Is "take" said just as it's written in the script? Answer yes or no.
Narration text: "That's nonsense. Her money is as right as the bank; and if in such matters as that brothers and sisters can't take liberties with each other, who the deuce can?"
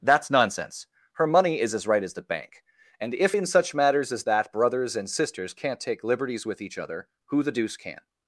yes